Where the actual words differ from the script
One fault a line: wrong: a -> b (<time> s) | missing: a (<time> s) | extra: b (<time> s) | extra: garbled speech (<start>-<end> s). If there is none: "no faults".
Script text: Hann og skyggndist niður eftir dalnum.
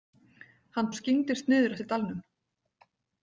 no faults